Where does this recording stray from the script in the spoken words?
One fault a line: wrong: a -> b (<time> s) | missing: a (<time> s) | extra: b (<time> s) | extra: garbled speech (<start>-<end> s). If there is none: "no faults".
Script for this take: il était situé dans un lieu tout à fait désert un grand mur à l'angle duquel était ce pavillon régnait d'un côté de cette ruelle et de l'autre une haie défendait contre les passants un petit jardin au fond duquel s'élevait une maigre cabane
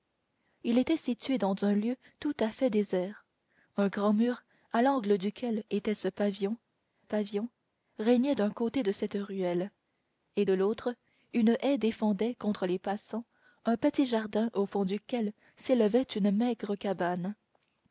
extra: pavillon (7.0 s)